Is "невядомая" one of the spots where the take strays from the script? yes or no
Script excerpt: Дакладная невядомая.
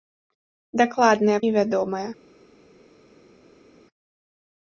no